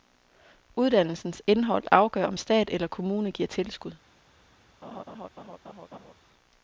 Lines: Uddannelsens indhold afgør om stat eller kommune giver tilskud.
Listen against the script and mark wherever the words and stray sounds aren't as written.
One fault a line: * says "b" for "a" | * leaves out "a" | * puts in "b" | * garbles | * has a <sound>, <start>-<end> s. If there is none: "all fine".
* has a laugh, 4.8-6.1 s